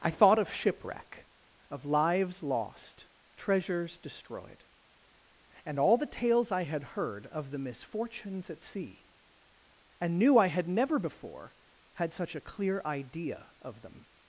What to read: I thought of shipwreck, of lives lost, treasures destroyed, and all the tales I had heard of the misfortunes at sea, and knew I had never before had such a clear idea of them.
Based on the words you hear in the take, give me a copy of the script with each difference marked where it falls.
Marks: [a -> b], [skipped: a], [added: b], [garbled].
I thought of shipwreck, of lives lost, treasures destroyed, and all the tales I had heard of the misfortunes at sea, and knew I had never before had such a clear idea of them.